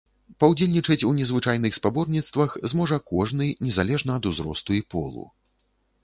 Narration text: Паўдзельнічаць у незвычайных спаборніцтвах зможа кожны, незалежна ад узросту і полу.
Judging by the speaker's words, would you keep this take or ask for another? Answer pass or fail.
pass